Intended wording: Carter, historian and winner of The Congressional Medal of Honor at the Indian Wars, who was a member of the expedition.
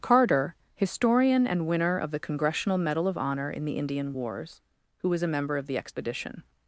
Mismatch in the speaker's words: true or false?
true